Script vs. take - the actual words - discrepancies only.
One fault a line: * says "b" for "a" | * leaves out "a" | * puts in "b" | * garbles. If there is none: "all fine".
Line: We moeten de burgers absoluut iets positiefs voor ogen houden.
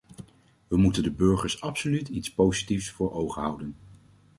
all fine